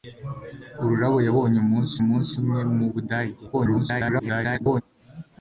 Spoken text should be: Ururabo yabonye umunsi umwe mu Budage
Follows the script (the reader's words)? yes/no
no